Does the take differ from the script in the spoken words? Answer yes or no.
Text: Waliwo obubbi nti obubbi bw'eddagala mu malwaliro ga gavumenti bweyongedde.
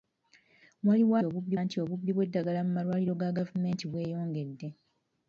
no